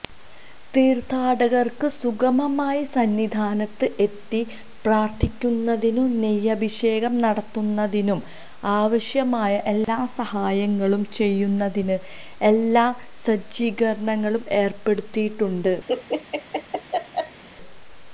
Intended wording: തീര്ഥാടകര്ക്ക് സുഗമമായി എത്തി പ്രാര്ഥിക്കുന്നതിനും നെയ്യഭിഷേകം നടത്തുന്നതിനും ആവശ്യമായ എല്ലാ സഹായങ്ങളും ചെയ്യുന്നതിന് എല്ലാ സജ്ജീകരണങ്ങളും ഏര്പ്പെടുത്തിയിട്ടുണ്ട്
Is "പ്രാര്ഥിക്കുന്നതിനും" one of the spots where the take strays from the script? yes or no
no